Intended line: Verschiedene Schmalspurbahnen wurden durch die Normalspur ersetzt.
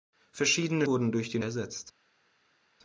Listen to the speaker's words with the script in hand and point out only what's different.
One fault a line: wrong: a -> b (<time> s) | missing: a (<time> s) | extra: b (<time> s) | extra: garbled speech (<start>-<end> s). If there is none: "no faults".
missing: Schmalspurbahnen (0.9 s)
missing: Normalspur (1.4 s)